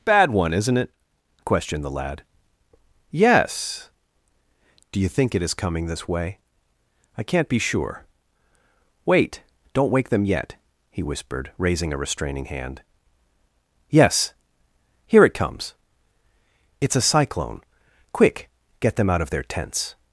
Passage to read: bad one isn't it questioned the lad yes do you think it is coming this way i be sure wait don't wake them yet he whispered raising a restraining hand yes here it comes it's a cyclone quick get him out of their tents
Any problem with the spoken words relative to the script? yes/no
yes